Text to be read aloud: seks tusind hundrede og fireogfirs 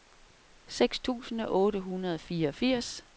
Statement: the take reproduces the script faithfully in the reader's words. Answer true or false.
false